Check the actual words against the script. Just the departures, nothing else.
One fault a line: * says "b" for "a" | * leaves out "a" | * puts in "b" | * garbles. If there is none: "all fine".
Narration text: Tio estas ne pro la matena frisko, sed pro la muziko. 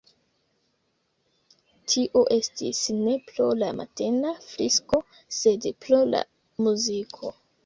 * says "estis" for "estas"